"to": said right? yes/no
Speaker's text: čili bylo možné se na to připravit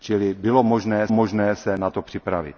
yes